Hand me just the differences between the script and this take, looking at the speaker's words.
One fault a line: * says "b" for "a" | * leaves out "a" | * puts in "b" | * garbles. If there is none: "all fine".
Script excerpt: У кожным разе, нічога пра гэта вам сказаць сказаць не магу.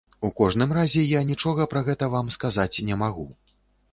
* puts in "я"
* leaves out "сказаць"